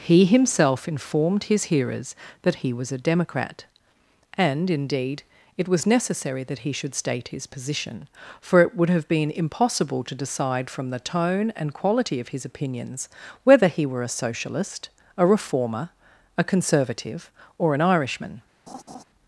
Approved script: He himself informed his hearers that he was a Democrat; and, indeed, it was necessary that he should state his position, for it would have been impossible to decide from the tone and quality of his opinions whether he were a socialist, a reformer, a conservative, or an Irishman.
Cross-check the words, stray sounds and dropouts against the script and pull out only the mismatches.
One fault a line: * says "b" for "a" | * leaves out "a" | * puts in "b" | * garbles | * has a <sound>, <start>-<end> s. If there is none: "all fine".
* has a laugh, 18.7-19.0 s